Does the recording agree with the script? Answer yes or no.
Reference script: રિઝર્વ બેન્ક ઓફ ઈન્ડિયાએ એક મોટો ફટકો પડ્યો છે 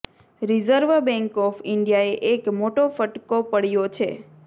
yes